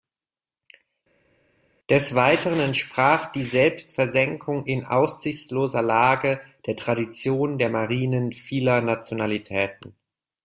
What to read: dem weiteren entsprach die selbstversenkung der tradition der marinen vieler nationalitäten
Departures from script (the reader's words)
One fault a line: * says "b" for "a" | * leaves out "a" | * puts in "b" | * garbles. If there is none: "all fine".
* says "des" for "dem"
* puts in "in aussichtsloser lage"